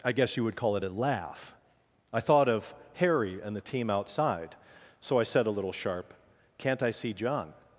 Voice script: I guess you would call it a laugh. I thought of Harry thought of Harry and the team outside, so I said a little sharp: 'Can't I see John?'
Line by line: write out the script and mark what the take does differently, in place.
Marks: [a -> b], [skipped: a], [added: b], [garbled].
I guess you would call it a laugh. I thought of Harry [skipped: thought of Harry] and the team outside, so I said a little sharp: 'Can't I see John?'